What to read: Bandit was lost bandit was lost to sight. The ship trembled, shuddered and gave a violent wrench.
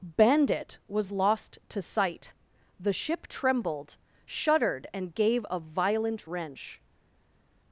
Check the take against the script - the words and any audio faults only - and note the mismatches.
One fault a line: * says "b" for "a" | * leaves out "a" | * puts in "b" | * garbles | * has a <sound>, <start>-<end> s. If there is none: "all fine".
* leaves out "bandit was lost"